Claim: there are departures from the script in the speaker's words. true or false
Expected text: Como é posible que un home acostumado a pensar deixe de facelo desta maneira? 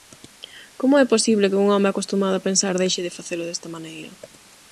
false